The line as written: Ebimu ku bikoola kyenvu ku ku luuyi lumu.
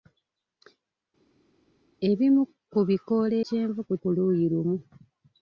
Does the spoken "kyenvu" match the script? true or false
true